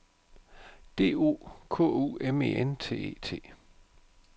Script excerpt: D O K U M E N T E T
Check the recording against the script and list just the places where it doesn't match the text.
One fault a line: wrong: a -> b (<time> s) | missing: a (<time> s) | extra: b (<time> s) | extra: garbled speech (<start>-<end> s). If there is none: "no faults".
no faults